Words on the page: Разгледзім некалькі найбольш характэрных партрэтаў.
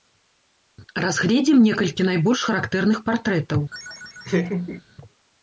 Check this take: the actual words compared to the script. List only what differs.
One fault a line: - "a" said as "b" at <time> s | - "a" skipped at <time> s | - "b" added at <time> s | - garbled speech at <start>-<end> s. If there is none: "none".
none